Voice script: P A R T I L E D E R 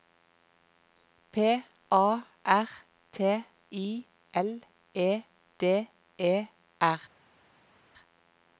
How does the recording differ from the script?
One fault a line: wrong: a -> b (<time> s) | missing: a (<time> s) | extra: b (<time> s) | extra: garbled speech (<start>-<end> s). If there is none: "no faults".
no faults